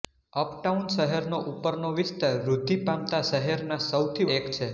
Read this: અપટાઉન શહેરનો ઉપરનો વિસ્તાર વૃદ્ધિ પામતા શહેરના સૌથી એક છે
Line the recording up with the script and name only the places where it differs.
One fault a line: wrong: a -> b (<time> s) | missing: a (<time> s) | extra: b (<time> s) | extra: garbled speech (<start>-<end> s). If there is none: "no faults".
no faults